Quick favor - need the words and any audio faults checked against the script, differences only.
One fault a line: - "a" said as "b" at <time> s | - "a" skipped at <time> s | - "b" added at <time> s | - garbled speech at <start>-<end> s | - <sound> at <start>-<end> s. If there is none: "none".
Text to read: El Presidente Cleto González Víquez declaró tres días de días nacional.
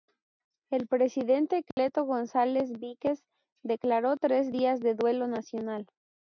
- dropout at 1.7-1.8 s
- "días" said as "duelo" at 4.9 s